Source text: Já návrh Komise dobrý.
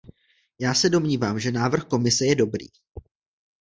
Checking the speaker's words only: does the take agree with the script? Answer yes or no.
no